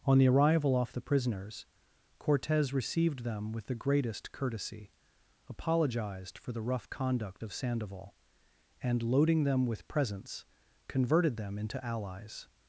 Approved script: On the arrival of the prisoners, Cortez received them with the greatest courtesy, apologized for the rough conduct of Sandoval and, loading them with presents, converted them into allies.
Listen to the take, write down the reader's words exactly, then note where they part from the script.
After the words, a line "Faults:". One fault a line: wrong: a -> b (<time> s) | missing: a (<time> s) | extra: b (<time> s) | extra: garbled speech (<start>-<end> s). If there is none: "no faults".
On the arrival off the prisoners, Cortez received them with the greatest courtesy, apologized for the rough conduct of Sandoval and, loading them with presents, converted them into allies.
Faults:
wrong: of -> off (0.8 s)